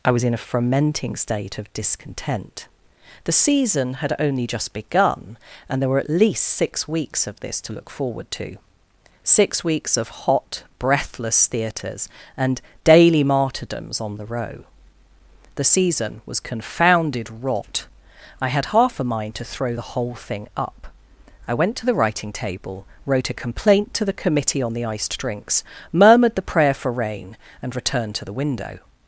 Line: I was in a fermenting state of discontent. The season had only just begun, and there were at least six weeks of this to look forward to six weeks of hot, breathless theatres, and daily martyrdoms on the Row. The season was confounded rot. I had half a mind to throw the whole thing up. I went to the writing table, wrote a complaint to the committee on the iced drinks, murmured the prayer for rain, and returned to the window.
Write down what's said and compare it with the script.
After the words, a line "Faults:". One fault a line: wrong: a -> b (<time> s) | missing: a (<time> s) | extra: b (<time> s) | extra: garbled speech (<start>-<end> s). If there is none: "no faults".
I was in a fermenting state of discontent. The season had only just begun, and there were at least six weeks of this to look forward to six weeks of hot, breathless theatres, and daily martyrdoms on the Row. The season was confounded rot. I had half a mind to throw the whole thing up. I went to the writing table, wrote a complaint to the committee on the iced drinks, murmured the prayer for rain, and returned to the window.
Faults:
no faults